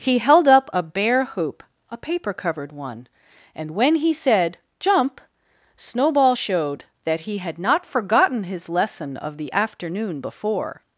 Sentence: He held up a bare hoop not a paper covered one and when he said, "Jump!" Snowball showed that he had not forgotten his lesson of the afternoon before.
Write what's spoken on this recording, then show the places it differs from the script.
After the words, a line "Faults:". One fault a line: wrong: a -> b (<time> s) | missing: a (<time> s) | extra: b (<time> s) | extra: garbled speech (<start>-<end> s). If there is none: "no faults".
He held up a bare hoop a paper covered one and when he said, "Jump!" Snowball showed that he had not forgotten his lesson of the afternoon before.
Faults:
missing: not (1.6 s)